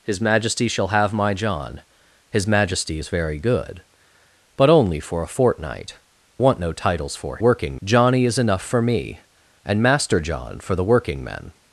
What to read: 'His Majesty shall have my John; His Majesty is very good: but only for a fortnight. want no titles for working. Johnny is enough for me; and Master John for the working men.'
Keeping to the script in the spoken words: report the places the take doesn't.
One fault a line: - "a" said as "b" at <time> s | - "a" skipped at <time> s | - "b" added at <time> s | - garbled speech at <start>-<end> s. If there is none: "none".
none